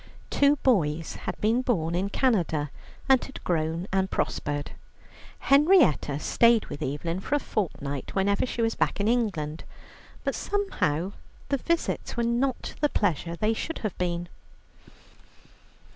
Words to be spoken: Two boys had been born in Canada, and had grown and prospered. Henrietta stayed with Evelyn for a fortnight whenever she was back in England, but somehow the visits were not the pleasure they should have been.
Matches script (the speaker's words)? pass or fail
pass